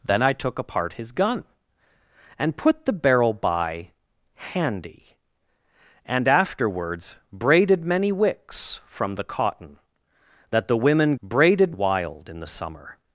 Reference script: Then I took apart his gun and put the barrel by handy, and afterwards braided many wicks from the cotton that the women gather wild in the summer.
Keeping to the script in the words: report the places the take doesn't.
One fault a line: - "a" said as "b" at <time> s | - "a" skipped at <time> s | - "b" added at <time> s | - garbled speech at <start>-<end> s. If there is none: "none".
- "gather" said as "braided" at 11.2 s